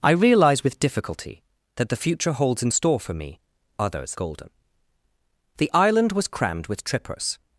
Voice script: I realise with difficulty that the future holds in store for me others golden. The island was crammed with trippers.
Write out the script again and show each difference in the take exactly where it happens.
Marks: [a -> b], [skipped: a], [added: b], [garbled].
I realise with difficulty that the future holds in store for me others golden. The island was crammed with trippers.